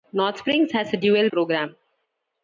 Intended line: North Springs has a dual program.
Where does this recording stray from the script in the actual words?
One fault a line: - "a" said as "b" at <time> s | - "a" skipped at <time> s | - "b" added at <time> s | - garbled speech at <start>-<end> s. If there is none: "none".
none